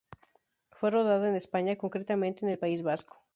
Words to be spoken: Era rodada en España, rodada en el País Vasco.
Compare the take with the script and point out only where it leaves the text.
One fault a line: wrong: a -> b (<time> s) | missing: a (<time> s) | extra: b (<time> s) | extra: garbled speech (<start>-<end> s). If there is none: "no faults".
wrong: Era -> Fue (0.7 s)
wrong: rodada -> concretamente (1.8 s)